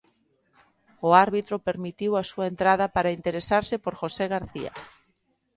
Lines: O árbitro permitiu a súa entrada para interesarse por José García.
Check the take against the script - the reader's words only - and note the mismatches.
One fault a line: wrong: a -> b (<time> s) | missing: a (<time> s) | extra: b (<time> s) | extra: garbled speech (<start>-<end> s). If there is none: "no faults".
no faults